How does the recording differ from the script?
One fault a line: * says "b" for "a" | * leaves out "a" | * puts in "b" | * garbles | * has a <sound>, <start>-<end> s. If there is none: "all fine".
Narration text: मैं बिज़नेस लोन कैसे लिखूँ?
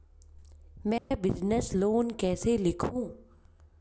* has a dropout, 1.0-1.1 s